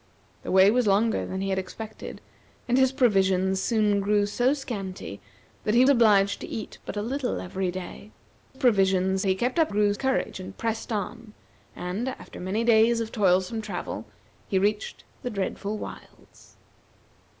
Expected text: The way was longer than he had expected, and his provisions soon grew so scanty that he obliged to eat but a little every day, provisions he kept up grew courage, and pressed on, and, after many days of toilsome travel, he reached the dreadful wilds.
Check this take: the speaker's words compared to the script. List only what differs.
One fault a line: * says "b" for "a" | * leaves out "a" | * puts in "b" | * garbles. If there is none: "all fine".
all fine